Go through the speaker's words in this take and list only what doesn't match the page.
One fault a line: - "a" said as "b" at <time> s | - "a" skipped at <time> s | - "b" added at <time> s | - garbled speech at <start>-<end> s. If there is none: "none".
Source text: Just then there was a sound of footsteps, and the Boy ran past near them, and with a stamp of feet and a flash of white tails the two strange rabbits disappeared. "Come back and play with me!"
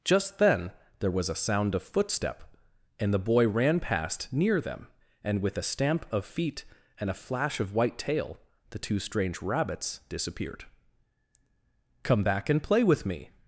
- "footsteps" said as "footstep" at 1.8 s
- "tails" said as "tail" at 8.0 s